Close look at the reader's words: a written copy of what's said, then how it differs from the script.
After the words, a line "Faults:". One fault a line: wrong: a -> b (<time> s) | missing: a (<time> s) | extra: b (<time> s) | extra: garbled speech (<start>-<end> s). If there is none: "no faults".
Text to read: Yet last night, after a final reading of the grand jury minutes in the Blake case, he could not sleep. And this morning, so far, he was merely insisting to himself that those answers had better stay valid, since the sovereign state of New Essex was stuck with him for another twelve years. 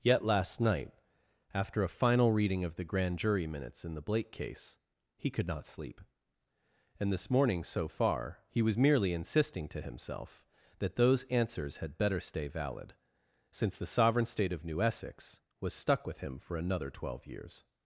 Yet last night, after a final reading of the grand jury minutes in the Blake case, he could not sleep. And this morning, so far, he was merely insisting to himself that those answers had better stay valid, since the sovereign state of New Essex was stuck with him for another twelve years.
Faults:
no faults